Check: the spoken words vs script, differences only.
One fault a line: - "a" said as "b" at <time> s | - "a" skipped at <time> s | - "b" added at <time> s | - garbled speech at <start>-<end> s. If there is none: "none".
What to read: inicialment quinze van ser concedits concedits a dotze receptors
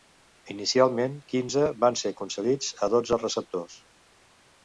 - "concedits" skipped at 2.7 s